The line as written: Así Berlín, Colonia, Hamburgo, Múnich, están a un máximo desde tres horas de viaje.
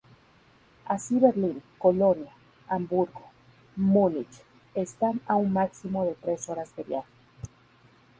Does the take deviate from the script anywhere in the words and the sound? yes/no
yes